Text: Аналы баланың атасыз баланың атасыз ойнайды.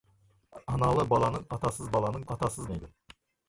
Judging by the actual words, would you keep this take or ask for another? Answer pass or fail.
pass